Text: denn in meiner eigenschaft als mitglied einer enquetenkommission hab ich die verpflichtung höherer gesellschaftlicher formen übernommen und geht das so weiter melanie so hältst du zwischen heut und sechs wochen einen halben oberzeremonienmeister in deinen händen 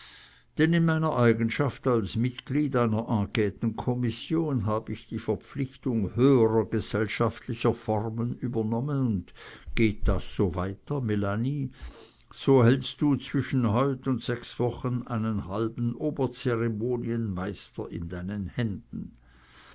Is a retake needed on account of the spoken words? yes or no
no